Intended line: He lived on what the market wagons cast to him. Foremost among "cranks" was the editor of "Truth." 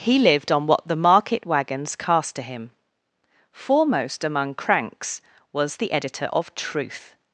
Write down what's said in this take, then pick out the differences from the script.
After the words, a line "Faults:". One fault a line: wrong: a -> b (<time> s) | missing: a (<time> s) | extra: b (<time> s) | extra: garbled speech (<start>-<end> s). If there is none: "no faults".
He lived on what the market wagons cast to him. Foremost among "cranks" was the editor of "Truth."
Faults:
no faults